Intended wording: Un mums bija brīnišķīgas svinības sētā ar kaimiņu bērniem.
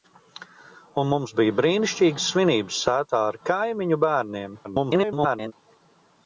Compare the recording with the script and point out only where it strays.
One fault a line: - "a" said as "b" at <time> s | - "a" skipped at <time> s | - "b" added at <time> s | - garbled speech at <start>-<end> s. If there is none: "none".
- garbled speech at 4.6-5.5 s